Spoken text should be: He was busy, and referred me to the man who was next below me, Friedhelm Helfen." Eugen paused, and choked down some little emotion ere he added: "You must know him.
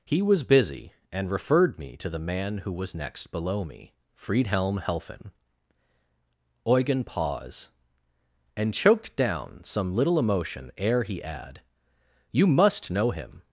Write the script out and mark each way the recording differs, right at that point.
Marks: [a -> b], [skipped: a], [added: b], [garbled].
He was busy, and referred me to the man who was next below me, Friedhelm Helfen." Eugen [paused, -> pause] and choked down some little emotion ere he [added: -> add] "You must know him.